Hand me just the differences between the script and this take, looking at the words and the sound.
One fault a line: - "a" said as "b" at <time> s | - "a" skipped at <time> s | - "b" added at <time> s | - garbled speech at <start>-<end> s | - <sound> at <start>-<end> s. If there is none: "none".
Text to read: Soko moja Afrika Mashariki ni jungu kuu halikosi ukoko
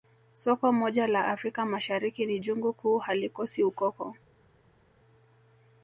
- "la" added at 1.1 s